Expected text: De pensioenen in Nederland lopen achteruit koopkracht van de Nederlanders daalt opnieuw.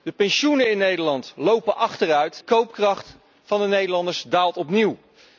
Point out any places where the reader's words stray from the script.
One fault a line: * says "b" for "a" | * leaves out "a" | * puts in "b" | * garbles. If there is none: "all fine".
all fine